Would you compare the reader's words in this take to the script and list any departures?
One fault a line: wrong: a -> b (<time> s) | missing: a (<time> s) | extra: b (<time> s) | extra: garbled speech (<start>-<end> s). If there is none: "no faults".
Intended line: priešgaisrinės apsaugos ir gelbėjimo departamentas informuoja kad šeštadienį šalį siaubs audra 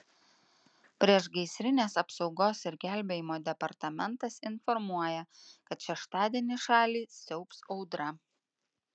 no faults